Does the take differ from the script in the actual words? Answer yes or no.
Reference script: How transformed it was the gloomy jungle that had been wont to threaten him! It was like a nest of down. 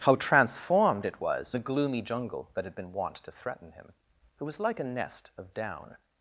no